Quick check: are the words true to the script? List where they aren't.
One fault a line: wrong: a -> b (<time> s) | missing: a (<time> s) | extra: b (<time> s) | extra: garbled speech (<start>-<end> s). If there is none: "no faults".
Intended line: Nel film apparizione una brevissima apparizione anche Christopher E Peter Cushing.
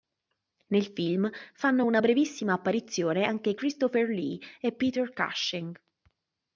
wrong: apparizione -> fanno (1.5 s)
extra: Lee (4.1 s)